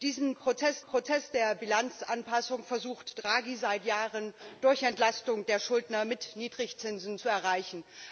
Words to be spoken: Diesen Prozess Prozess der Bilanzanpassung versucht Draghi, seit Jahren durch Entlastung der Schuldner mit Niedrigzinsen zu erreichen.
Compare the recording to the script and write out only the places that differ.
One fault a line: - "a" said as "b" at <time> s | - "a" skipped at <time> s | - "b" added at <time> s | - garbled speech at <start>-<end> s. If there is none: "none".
none